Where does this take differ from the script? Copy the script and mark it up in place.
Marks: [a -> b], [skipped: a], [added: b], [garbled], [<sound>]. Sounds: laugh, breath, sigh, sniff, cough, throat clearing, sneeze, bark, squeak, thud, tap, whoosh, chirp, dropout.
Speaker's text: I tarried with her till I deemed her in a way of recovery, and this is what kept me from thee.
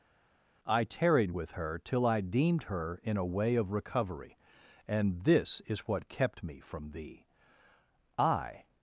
I tarried with her till I deemed her in a way of recovery, and this is what kept me from thee. [added: I]